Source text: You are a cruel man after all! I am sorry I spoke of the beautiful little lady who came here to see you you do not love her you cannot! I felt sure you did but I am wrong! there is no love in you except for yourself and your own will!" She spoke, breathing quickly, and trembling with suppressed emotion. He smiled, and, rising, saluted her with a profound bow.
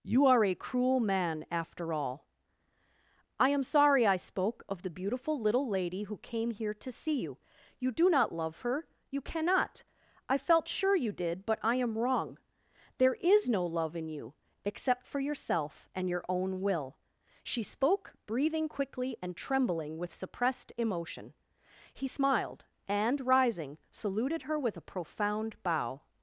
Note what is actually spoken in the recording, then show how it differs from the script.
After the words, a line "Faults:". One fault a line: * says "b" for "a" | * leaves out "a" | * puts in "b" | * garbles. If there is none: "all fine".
You are a cruel man after all! I am sorry I spoke of the beautiful little lady who came here to see you you do not love her you cannot! I felt sure you did but I am wrong! there is no love in you except for yourself and your own will!" She spoke, breathing quickly, and trembling with suppressed emotion. He smiled, and, rising, saluted her with a profound bow.
Faults:
all fine